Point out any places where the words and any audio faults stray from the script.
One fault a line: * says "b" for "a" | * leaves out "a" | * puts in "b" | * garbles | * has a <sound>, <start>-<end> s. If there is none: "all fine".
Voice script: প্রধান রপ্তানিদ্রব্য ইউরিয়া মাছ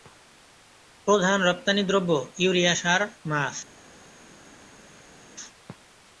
* puts in "সার"